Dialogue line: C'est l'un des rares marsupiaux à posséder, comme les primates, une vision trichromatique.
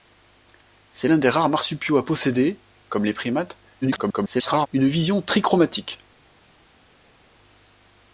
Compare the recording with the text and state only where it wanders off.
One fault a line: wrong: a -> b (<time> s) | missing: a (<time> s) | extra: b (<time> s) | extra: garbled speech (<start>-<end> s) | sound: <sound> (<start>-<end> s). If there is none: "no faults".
extra: garbled speech (3.8-4.7 s)